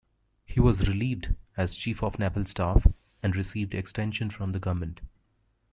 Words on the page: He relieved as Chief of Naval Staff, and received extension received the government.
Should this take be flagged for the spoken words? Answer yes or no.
yes